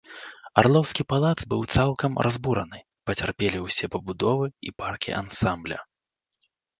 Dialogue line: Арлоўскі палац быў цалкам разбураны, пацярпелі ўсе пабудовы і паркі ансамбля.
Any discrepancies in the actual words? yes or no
no